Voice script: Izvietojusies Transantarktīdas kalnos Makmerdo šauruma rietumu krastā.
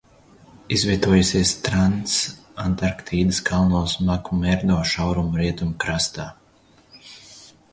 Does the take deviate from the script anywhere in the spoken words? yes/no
no